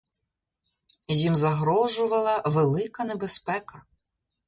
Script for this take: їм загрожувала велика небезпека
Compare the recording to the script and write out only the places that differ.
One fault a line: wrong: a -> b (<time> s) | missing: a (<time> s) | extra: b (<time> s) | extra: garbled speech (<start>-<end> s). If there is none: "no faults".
no faults